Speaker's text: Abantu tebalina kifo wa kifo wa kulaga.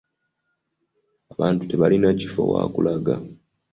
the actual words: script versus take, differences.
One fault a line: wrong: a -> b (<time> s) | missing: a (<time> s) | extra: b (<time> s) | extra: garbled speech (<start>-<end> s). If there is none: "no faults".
missing: kifo wa (2.6 s)